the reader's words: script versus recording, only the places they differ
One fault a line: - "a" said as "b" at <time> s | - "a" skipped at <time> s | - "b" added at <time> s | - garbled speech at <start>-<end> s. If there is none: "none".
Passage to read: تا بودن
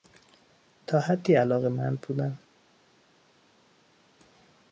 - "حدی علاقمند" added at 1.0 s